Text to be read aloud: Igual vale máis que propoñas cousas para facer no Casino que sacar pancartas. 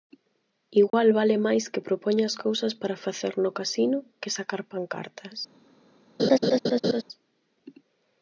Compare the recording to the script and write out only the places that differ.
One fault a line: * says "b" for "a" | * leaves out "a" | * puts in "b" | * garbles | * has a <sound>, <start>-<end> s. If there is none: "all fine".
* has a dropout, 0.9-0.9 s
* has a laugh, 6.2-7.0 s